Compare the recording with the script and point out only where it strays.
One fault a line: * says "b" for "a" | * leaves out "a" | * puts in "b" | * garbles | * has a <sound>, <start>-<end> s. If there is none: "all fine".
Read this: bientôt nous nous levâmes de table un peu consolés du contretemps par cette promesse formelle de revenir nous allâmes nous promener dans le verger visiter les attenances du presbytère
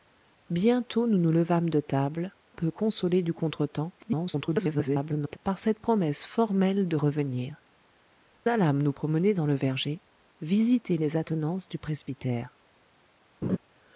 * leaves out "un"
* garbles
* leaves out "nous"
* has a laugh, 13.4-13.6 s